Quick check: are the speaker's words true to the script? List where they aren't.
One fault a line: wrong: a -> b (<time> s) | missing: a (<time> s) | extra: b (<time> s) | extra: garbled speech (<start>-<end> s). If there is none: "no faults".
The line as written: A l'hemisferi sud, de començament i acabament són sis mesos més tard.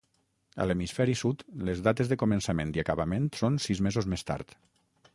extra: les dates (1.7 s)